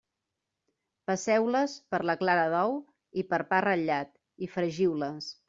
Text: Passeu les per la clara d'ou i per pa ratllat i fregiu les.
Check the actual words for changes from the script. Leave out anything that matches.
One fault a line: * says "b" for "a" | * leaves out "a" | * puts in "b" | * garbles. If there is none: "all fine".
all fine